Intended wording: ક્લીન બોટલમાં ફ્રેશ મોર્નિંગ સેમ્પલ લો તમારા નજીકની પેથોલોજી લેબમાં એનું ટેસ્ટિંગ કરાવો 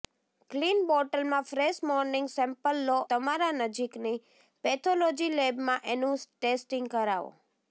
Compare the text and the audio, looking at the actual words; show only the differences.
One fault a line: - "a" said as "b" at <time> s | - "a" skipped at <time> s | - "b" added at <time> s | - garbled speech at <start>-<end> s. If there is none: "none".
none